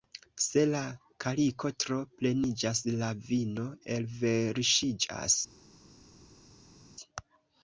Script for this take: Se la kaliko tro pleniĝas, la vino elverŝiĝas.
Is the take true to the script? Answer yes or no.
yes